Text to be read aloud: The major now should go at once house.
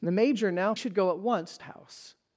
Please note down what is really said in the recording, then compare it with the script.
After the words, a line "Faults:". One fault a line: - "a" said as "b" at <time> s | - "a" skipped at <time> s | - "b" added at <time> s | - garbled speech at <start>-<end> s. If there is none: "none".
The major now should go at once house.
Faults:
none